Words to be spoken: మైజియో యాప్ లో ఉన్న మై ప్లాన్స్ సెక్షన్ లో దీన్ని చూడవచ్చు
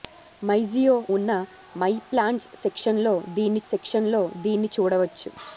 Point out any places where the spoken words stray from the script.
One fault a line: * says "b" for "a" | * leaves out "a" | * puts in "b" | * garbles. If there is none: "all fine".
* leaves out "యాప్ లో"
* puts in "సెక్షన్ లో దీన్ని"